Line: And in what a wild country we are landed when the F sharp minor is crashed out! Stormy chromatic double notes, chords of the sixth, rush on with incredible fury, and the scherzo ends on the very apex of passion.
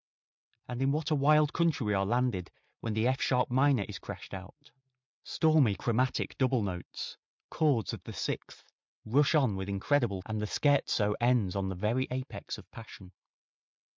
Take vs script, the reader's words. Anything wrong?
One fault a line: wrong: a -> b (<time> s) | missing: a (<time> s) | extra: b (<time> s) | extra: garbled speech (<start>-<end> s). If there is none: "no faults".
missing: fury (10.2 s)